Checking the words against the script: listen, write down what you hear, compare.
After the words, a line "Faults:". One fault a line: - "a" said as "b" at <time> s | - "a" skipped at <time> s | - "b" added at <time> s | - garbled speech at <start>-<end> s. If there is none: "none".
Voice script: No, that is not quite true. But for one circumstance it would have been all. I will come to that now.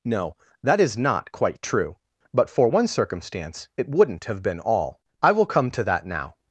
No, that is not quite true. But for one circumstance it wouldn't have been all. I will come to that now.
Faults:
- "would" said as "wouldn't" at 3.9 s